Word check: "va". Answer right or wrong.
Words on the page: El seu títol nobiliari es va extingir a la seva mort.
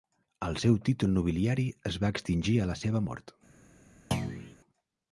right